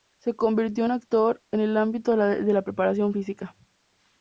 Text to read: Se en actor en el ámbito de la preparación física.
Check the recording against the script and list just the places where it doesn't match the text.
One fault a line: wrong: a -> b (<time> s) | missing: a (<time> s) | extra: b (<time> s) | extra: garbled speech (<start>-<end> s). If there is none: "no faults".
extra: convirtió (0.3 s)